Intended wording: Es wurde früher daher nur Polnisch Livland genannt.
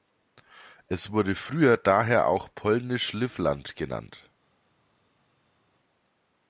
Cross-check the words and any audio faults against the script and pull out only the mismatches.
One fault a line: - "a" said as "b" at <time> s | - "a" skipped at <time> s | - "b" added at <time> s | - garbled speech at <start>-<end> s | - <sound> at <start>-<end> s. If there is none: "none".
- "nur" said as "auch" at 2.3 s